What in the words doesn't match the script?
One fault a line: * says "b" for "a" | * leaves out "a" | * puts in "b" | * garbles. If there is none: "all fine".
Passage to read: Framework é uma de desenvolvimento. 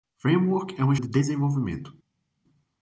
all fine